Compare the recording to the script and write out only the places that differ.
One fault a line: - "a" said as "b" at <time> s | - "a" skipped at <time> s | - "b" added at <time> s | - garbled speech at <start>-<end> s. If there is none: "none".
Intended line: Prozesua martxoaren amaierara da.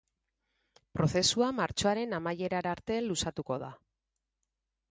- "arte luzatuko" added at 2.8 s